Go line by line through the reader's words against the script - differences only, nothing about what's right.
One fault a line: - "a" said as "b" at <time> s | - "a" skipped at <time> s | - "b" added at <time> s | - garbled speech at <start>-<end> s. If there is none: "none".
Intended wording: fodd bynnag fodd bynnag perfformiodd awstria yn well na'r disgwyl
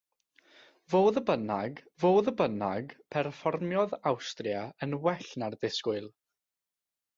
none